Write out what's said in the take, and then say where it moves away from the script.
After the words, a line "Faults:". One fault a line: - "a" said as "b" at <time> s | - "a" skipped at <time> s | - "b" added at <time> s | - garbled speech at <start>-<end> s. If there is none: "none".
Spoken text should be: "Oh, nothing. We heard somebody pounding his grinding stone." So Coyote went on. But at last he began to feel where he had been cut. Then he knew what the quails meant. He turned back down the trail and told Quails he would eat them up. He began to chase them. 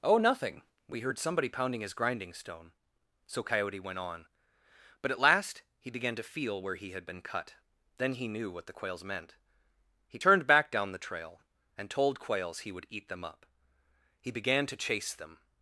"Oh, nothing. We heard somebody pounding his grinding stone." So Coyote went on. But at last he began to feel where he had been cut. Then he knew what the quails meant. He turned back down the trail and told Quails he would eat them up. He began to chase them.
Faults:
none